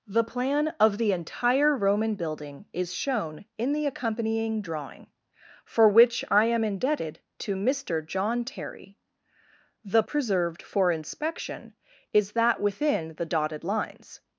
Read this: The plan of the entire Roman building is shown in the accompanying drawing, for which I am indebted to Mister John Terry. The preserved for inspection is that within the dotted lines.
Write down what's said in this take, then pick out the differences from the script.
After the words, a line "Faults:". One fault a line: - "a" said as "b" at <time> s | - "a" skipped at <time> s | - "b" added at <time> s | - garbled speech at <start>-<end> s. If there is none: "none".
The plan of the entire Roman building is shown in the accompanying drawing, for which I am indebted to Mister John Terry. The preserved for inspection is that within the dotted lines.
Faults:
none